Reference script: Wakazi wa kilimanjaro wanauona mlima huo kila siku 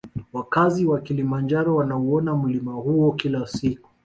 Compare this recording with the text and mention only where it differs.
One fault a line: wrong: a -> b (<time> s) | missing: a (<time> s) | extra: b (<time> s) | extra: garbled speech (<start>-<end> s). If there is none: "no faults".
no faults